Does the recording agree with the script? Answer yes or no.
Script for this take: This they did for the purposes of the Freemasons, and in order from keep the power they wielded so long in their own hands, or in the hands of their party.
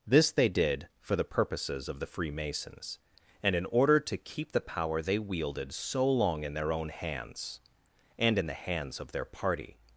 no